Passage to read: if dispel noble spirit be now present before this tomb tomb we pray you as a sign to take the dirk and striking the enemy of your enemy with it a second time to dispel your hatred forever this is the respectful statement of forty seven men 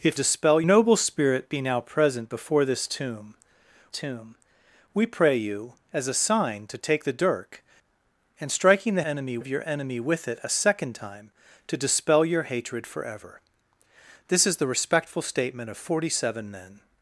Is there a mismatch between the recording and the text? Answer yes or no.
no